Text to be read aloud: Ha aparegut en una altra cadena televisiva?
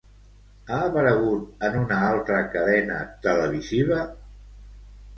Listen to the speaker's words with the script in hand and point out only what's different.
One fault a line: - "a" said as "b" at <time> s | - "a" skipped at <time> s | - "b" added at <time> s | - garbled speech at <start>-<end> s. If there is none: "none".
none